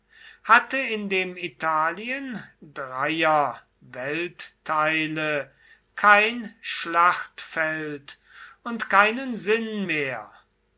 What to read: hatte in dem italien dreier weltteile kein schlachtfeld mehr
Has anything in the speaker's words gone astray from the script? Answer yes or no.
yes